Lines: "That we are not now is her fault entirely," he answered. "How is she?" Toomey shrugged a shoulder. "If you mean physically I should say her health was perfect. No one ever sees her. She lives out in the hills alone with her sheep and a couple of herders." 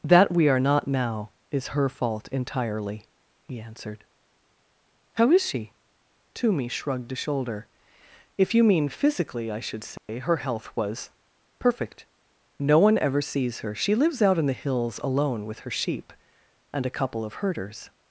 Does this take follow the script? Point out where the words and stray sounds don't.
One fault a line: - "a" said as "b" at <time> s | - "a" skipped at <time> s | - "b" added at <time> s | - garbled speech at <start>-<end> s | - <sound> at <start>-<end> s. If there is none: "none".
- dropout at 10.0-10.1 s